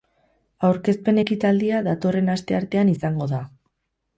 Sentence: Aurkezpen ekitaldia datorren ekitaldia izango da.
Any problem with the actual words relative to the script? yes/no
yes